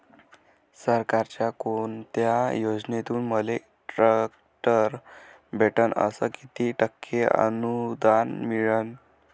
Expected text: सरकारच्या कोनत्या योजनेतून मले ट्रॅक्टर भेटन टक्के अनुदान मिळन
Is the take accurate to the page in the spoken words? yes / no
no